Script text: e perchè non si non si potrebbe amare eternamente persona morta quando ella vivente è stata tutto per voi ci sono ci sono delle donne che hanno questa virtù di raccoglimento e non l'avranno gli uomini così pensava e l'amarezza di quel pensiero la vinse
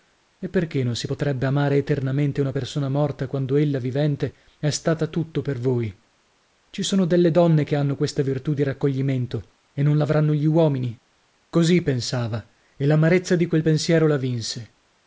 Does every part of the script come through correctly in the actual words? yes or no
no